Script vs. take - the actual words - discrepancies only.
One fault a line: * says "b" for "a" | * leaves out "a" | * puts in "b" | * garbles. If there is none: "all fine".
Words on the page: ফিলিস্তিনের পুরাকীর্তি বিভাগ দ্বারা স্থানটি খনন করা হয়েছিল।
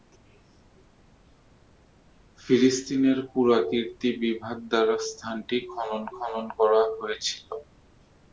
* puts in "খনন"